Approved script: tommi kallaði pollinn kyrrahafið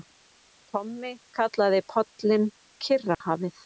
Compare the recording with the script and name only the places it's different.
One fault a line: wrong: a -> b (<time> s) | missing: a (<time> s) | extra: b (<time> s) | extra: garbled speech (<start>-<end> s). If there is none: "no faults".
no faults